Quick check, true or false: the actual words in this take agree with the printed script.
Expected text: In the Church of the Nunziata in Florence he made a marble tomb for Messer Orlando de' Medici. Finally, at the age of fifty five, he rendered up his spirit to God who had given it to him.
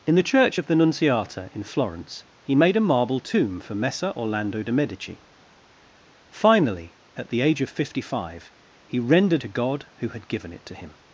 false